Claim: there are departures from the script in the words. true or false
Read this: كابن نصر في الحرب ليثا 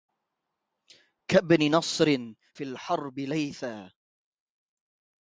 false